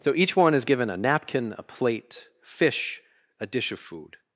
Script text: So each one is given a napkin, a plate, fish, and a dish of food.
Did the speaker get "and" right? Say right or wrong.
wrong